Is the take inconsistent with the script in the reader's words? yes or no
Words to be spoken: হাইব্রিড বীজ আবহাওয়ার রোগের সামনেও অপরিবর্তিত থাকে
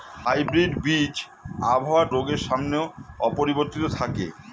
no